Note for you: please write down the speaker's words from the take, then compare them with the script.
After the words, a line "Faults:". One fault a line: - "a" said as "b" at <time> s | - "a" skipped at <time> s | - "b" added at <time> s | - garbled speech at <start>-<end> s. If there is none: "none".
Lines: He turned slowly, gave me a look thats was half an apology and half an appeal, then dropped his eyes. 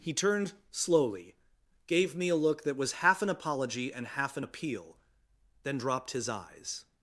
He turned slowly, gave me a look that was half an apology and half an appeal, then dropped his eyes.
Faults:
- "thats" said as "that" at 2.6 s